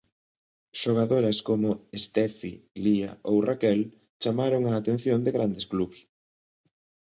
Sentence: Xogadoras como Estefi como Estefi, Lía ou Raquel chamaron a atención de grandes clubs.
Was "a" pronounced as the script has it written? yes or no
yes